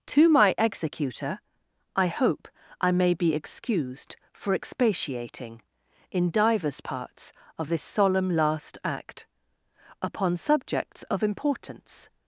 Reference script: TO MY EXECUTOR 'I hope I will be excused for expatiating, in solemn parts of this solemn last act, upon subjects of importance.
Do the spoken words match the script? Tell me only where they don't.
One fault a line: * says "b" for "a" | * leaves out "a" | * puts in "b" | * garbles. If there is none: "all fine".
* says "may" for "will"
* says "divers" for "solemn"